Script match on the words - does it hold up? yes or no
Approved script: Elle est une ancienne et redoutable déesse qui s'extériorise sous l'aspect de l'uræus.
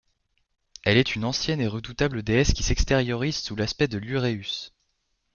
yes